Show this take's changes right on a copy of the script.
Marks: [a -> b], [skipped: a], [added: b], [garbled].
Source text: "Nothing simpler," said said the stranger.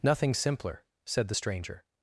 "Nothing simpler," said [skipped: said] the stranger.